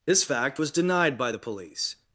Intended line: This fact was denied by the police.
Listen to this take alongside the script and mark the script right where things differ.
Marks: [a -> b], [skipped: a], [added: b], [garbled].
This fact was denied by the police.